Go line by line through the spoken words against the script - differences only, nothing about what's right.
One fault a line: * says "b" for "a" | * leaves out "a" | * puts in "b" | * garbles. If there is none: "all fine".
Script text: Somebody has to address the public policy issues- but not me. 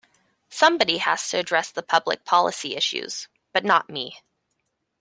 all fine